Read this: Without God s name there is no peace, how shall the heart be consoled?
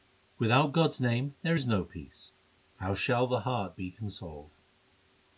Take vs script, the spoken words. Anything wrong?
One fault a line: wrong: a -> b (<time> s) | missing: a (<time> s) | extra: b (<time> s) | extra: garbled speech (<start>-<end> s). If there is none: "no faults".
no faults